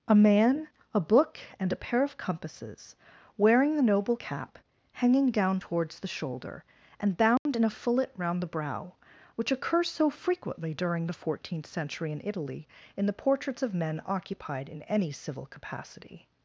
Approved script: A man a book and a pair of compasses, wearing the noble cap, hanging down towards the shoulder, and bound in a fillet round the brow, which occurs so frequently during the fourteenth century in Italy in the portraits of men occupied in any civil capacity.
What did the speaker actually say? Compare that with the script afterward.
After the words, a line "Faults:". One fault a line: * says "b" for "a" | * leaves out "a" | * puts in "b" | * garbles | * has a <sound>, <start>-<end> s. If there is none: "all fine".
A man a book and a pair of compasses, wearing the noble cap, hanging down towards the shoulder, and bound in a fillet round the brow, which occurs so frequently during the fourteenth century in Italy in the portraits of men occupied in any civil capacity.
Faults:
* has a dropout, 7.4-7.5 s